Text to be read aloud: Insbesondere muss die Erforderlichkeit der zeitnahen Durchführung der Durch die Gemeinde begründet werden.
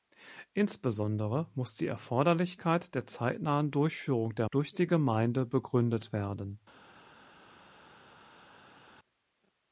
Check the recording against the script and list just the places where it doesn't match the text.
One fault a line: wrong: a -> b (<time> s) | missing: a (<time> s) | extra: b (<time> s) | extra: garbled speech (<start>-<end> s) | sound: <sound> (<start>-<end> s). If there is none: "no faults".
no faults